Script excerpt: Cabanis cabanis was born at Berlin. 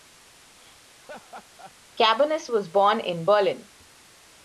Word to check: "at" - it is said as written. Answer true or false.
false